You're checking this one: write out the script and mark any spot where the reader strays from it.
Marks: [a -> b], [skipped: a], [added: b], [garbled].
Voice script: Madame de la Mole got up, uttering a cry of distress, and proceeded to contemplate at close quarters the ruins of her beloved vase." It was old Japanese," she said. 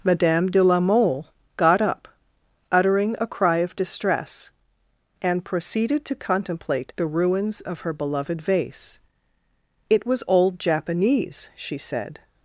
Madame de la Mole got up, uttering a cry of distress, and proceeded to contemplate [skipped: at close quarters] the ruins of her beloved vase." It was old Japanese," she said.